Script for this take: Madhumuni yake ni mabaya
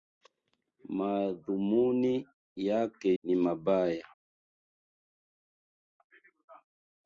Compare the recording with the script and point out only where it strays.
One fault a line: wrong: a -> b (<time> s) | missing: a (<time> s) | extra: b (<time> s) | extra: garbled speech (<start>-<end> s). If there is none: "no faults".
no faults